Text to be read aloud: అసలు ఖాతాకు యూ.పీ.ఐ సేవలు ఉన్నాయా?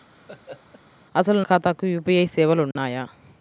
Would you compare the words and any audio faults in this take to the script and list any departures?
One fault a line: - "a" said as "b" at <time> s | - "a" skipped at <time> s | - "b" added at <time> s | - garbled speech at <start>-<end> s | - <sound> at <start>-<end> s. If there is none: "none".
- laugh at 0.1-0.8 s
- dropout at 2.7-2.8 s